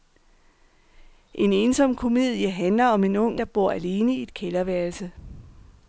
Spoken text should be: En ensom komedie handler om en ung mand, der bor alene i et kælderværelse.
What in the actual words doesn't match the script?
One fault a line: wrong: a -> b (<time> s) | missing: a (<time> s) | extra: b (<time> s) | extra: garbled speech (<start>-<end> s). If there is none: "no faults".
missing: mand (3.4 s)